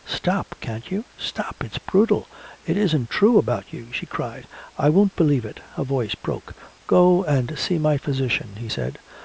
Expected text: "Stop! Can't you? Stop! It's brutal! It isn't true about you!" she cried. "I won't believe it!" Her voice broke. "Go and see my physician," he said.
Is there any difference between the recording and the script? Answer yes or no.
no